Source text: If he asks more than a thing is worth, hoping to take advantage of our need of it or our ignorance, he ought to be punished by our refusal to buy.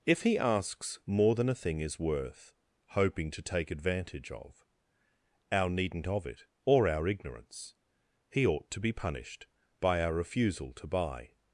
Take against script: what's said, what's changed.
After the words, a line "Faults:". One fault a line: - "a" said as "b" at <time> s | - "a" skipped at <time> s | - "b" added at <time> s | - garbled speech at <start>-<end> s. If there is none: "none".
If he asks more than a thing is worth, hoping to take advantage of our needn't of it or our ignorance, he ought to be punished by our refusal to buy.
Faults:
- "need" said as "needn't" at 5.7 s